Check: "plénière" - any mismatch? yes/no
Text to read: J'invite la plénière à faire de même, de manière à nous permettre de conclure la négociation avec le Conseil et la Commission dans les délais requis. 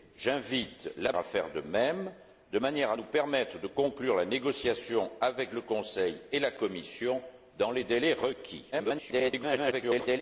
yes